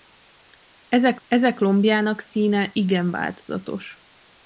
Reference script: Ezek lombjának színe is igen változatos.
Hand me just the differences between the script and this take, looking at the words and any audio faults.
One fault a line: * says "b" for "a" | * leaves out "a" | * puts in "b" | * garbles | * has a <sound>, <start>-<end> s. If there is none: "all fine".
* puts in "ezek"
* leaves out "is"